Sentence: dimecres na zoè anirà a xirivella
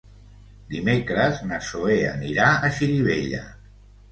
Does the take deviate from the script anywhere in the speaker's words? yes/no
no